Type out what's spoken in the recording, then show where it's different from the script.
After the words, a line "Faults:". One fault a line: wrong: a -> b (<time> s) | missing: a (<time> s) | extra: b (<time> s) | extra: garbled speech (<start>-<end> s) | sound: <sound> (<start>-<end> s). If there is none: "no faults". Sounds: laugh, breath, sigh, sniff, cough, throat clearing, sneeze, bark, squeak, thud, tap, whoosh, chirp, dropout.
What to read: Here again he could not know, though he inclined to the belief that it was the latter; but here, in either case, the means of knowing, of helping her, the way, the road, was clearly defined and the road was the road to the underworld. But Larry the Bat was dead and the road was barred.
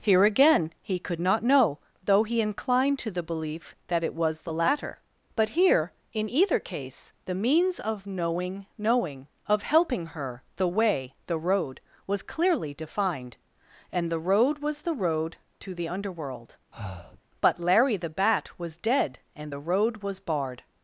Here again he could not know, though he inclined to the belief that it was the latter; but here, in either case, the means of knowing knowing, of helping her, the way, the road, was clearly defined and the road was the road to the underworld. But Larry the Bat was dead and the road was barred.
Faults:
extra: knowing (8.8 s)
sound: breath (16.7-17.2 s)